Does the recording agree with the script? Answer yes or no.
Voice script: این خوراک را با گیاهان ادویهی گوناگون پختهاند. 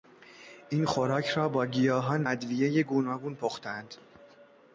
yes